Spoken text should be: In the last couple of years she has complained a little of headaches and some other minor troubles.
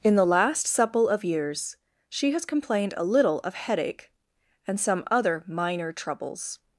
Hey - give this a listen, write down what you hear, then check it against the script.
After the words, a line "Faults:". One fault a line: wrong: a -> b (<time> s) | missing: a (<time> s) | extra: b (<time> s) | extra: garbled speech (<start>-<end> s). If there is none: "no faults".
In the last supple of years she has complained a little of headache and some other minor troubles.
Faults:
wrong: couple -> supple (0.7 s)
wrong: headaches -> headache (3.5 s)